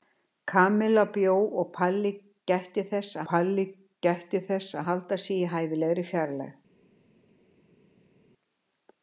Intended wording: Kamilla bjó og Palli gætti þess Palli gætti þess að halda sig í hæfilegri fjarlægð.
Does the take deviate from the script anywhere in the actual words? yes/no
no